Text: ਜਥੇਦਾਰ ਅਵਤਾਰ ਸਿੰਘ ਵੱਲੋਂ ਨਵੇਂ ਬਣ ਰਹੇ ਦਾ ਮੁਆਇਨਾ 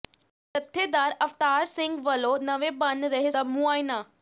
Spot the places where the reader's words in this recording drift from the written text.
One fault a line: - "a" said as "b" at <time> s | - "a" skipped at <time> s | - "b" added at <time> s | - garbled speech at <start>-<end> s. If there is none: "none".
none